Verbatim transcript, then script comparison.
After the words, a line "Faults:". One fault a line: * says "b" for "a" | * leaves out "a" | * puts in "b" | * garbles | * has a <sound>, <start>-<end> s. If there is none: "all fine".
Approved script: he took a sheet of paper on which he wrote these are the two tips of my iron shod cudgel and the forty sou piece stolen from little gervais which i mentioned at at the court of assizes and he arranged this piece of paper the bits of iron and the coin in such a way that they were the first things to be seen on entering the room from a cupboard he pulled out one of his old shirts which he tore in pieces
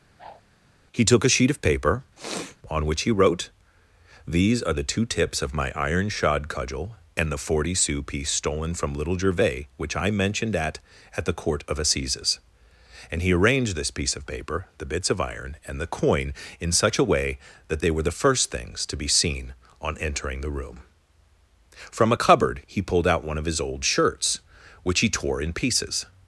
he took a sheet of paper on which he wrote these are the two tips of my iron shod cudgel and the forty sou piece stolen from little gervais which i mentioned at at the court of assizes and he arranged this piece of paper the bits of iron and the coin in such a way that they were the first things to be seen on entering the room from a cupboard he pulled out one of his old shirts which he tore in pieces
Faults:
* has a whoosh, 0.2-0.4 s
* has a sniff, 2.2-2.6 s